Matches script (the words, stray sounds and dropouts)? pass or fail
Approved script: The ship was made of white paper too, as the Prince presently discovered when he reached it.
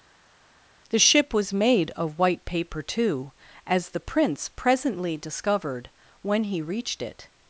pass